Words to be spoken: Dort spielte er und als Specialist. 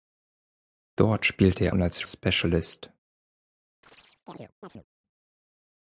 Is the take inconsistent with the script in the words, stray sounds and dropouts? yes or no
yes